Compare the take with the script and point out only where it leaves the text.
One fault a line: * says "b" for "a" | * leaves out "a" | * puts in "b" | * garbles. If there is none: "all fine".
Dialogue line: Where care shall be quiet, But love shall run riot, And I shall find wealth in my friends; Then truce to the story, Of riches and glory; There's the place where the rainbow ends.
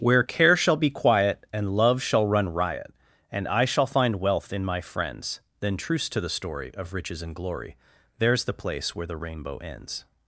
* says "And" for "But"